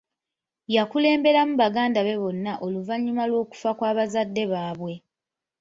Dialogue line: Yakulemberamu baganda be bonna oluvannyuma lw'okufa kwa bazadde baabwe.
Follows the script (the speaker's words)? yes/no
yes